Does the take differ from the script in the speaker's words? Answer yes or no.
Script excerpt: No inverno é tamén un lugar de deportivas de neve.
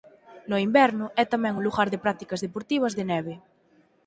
yes